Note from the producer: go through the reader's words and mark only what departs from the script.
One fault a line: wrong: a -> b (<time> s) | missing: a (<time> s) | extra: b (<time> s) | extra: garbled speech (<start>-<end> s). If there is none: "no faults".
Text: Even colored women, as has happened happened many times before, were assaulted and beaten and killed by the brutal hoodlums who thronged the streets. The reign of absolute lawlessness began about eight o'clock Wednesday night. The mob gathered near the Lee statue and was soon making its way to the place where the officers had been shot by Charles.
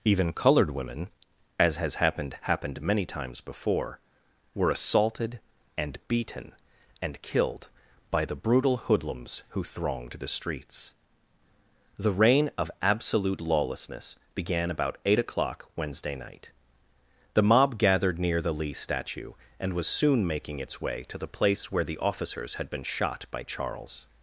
no faults